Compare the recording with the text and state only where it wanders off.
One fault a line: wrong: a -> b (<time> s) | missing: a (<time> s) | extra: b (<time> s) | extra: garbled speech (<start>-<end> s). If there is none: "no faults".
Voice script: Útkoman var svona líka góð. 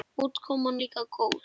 missing: var svona (0.8 s)